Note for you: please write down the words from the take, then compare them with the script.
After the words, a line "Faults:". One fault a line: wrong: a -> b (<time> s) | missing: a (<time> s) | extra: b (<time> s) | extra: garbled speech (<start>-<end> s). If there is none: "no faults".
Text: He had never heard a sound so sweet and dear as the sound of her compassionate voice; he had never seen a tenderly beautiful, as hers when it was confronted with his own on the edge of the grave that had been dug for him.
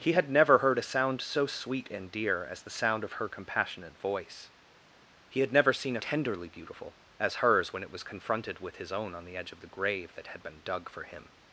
He had never heard a sound so sweet and dear as the sound of her compassionate voice; he had never seen a tenderly beautiful, as hers when it was confronted with his own on the edge of the grave that had been dug for him.
Faults:
no faults